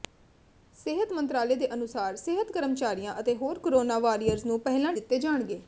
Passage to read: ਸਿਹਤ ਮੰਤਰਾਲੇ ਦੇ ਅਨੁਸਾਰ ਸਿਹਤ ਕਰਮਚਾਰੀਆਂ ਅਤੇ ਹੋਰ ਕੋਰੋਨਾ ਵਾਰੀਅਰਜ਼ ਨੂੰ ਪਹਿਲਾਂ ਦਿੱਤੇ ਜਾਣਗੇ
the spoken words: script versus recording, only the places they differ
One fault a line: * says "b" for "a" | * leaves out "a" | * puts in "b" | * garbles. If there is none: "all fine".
all fine